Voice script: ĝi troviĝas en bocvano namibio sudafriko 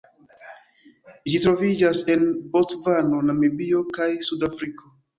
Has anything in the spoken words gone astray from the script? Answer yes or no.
yes